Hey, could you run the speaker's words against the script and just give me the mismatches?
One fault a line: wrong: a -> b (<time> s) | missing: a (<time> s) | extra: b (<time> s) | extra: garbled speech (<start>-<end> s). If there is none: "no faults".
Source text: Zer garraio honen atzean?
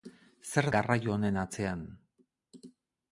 no faults